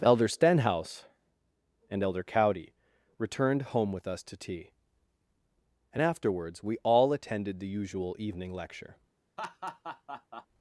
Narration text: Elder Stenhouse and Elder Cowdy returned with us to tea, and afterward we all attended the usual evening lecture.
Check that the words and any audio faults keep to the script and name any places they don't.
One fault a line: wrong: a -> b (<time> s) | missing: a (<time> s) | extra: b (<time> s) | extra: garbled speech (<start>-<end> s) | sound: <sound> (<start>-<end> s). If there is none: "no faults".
extra: home (3.6 s)
wrong: afterward -> afterwards (6.0 s)
sound: laugh (9.4-10.5 s)